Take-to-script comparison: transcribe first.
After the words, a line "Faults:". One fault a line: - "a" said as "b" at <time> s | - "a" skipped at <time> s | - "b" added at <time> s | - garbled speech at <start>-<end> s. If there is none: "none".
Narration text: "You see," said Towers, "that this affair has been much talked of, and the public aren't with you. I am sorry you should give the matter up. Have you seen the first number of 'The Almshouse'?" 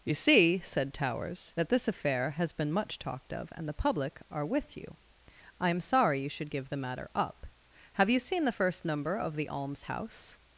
"You see," said Towers, "that this affair has been much talked of, and the public are with you. I am sorry you should give the matter up. Have you seen the first number of 'The Almshouse'?"
Faults:
- "aren't" said as "are" at 4.3 s